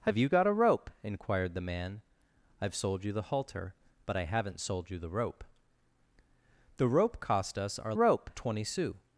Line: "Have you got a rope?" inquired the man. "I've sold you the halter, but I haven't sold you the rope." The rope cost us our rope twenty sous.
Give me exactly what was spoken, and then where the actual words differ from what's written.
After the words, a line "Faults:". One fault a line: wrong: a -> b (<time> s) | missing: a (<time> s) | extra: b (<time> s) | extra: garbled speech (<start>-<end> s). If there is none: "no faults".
"Have you got a rope?" inquired the man. "I've sold you the halter, but I haven't sold you the rope." The rope cost us our rope twenty sous.
Faults:
no faults